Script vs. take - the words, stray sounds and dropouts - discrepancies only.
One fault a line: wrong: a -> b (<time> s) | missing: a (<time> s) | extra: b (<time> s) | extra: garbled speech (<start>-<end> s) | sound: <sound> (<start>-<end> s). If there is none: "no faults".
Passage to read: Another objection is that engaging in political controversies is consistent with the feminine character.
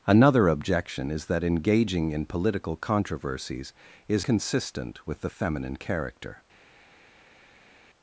no faults